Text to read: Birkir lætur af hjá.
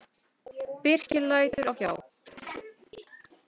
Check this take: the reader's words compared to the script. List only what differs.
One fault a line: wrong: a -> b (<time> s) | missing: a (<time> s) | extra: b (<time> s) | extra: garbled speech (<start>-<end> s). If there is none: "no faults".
no faults